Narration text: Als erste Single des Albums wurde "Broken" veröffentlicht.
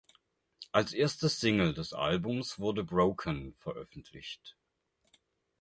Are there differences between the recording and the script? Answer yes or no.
no